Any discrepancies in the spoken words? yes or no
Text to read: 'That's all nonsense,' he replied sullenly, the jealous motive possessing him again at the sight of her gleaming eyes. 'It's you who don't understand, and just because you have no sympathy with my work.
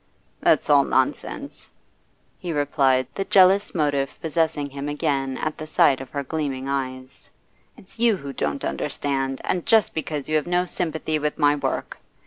yes